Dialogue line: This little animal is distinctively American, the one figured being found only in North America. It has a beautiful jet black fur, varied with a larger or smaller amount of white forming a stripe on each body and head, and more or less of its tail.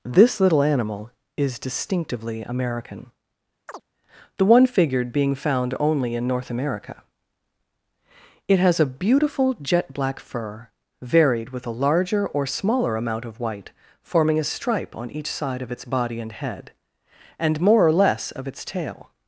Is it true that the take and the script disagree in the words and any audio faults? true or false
true